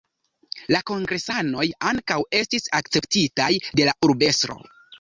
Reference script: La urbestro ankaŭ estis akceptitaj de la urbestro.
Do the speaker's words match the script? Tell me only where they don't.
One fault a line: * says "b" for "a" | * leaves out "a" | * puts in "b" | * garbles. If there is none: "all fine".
* says "kongresanoj" for "urbestro"